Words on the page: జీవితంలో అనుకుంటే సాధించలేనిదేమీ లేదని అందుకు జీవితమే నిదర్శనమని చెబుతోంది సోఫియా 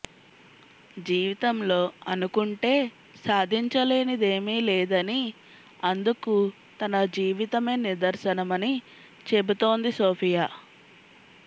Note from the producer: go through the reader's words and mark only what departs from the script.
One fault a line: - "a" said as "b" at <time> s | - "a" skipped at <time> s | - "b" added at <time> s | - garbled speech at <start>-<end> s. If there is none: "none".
- "తన" added at 6.8 s